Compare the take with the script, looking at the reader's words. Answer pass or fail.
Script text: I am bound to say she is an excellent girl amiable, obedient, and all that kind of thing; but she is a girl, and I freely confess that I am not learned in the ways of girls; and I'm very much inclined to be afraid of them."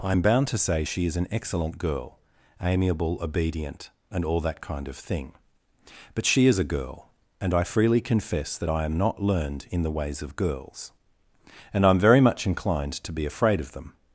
pass